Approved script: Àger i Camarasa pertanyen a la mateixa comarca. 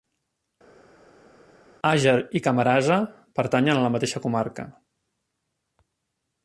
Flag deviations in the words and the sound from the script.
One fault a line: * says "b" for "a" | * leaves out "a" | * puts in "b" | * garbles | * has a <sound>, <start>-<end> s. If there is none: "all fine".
all fine